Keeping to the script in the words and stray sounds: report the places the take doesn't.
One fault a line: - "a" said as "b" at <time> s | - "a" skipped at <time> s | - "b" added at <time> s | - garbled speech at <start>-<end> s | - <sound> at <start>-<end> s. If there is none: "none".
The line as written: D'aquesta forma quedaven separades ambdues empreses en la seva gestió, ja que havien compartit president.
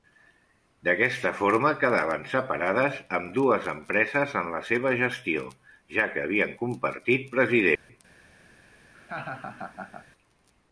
- dropout at 7.8-7.9 s
- laugh at 8.9-10.1 s